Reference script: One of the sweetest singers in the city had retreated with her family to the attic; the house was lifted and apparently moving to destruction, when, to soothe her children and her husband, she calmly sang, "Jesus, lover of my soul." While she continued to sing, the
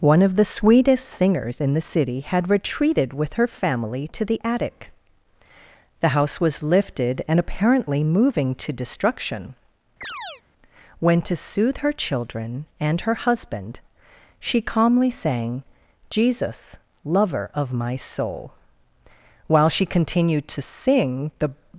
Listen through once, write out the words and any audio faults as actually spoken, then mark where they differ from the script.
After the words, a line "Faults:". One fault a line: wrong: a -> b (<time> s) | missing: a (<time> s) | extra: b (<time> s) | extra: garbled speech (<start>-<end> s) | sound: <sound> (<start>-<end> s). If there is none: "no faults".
One of the sweetest singers in the city had retreated with her family to the attic; the house was lifted and apparently moving to destruction, when, to soothe her children and her husband, she calmly sang, "Jesus, lover of my soul." While she continued to sing, the
Faults:
sound: chirp (10.0-10.4 s)